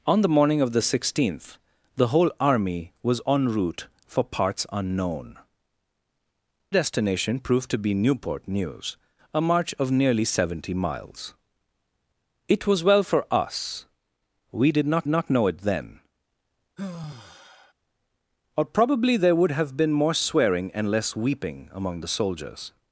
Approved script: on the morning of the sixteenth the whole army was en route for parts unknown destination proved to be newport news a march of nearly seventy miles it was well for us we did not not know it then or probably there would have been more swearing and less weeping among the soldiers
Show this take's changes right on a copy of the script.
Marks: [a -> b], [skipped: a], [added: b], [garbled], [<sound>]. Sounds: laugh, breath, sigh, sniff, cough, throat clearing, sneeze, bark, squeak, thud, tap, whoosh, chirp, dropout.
on the morning of the sixteenth the whole army was en route for parts unknown destination proved to be newport news a march of nearly seventy miles it was well for us we did not not know it then [sigh] or probably there would have been more swearing and less weeping among the soldiers